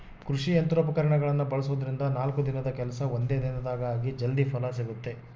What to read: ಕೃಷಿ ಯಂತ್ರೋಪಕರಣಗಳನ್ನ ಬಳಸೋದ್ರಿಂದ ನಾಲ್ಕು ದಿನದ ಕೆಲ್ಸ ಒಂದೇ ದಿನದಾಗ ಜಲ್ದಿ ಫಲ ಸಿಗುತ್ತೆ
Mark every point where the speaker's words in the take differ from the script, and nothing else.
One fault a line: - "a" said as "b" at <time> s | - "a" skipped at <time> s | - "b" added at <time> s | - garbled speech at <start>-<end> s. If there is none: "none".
- "ಆಗಿ" added at 3.9 s